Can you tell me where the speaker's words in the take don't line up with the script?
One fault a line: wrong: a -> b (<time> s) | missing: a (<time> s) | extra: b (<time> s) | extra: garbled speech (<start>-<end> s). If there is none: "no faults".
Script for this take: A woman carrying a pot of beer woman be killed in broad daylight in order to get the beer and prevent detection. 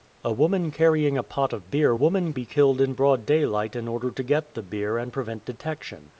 no faults